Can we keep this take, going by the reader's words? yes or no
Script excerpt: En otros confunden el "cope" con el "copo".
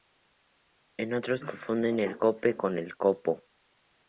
yes